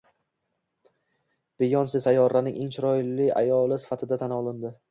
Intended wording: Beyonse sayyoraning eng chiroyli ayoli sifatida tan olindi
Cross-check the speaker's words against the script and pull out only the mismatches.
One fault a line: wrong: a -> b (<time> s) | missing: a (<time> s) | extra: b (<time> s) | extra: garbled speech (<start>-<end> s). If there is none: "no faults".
no faults